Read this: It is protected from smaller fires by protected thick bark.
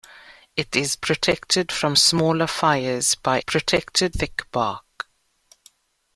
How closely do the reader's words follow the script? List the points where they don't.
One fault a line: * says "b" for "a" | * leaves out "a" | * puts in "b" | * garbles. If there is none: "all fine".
all fine